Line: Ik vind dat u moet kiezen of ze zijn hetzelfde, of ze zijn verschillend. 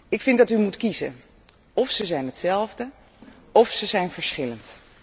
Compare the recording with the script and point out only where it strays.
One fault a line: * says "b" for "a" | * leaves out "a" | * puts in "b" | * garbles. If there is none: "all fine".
all fine